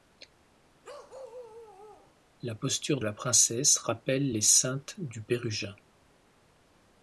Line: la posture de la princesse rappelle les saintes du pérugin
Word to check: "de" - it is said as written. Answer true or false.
false